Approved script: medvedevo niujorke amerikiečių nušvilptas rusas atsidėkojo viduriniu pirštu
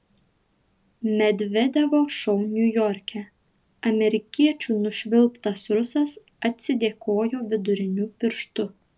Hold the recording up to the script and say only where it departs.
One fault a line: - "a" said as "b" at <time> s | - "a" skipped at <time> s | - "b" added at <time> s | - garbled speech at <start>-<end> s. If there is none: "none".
- "šou" added at 2.2 s